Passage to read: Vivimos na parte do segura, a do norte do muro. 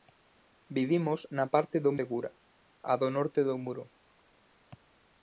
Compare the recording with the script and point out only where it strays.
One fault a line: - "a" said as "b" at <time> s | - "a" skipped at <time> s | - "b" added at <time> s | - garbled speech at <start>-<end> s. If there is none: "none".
none